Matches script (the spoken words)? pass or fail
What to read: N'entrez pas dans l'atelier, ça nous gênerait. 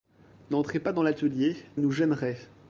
fail